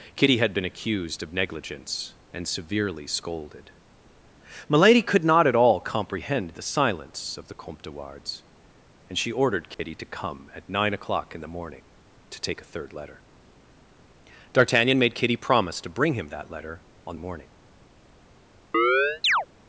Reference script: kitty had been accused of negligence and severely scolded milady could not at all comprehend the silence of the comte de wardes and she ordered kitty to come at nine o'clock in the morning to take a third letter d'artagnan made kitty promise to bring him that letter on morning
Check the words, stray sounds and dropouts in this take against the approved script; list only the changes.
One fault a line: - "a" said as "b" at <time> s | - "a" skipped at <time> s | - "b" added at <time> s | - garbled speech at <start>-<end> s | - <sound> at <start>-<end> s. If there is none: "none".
- dropout at 9.7-9.8 s
- chirp at 18.7-19.5 s